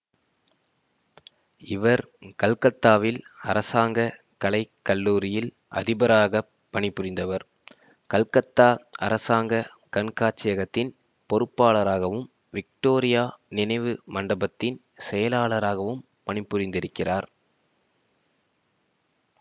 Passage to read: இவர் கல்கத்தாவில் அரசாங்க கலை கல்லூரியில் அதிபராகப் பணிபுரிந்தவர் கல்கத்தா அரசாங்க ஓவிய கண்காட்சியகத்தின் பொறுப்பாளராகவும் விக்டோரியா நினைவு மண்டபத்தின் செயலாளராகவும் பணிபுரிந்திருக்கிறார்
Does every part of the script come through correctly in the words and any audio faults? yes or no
no